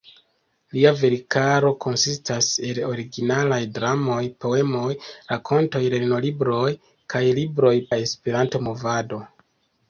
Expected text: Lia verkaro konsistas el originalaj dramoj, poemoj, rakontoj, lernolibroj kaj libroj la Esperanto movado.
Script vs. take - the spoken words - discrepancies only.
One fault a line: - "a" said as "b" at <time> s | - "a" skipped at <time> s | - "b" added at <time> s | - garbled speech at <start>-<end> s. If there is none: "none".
none